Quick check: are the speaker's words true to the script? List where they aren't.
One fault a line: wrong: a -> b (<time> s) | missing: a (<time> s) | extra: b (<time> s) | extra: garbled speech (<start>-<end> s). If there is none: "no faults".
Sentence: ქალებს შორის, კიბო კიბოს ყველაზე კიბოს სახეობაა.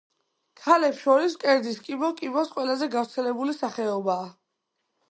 extra: მკერდის (1.4 s)
wrong: კიბოს -> გავრცელებული (3.0 s)